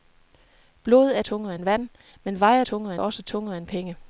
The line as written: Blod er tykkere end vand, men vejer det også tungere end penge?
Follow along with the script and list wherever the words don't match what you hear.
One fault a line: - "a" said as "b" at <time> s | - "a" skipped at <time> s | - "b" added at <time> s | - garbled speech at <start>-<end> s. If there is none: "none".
- "tykkere" said as "tungere" at 1.2 s
- "det" said as "tungere" at 2.6 s